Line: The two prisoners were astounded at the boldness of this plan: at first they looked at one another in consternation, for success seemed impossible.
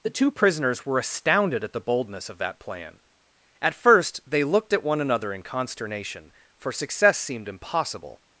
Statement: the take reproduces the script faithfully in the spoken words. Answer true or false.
false